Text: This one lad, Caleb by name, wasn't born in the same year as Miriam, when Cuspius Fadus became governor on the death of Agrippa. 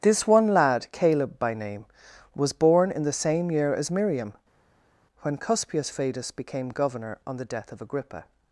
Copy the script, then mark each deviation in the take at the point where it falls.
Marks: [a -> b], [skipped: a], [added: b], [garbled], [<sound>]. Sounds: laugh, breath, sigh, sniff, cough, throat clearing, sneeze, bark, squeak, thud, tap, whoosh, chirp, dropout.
This one lad, Caleb by name, [wasn't -> was] born in the same year as Miriam, when Cuspius Fadus became governor on the death of Agrippa.